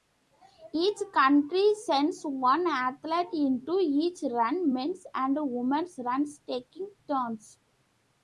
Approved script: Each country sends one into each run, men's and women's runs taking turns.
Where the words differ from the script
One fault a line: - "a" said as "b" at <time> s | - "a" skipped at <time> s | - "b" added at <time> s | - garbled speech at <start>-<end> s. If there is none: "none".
- "athlete" added at 2.6 s